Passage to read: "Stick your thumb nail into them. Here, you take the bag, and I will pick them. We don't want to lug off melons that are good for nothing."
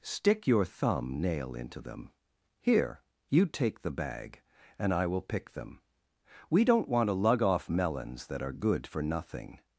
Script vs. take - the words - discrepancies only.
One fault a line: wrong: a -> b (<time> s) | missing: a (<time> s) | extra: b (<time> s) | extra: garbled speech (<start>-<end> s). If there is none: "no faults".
no faults